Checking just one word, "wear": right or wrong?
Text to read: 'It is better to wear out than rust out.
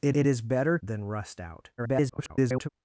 wrong